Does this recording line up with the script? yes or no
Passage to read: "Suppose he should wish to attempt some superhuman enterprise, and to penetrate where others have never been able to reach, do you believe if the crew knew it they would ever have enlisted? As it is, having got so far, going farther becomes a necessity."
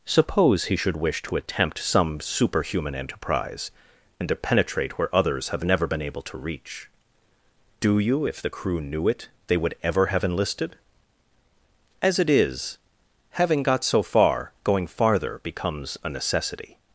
no